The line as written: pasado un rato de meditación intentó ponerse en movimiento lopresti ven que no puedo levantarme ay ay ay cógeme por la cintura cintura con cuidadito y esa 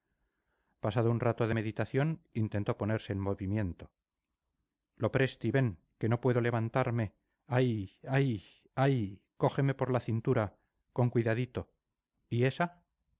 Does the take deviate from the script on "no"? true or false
false